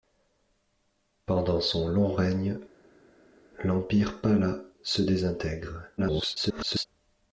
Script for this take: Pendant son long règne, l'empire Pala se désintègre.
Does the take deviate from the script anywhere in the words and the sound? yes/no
yes